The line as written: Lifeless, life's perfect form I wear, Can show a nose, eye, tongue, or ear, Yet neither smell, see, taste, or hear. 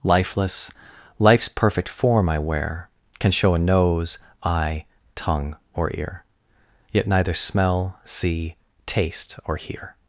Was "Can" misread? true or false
false